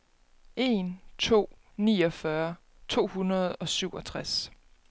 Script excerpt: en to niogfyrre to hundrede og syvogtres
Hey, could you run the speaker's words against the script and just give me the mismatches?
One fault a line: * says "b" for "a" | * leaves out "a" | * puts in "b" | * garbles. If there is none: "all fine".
all fine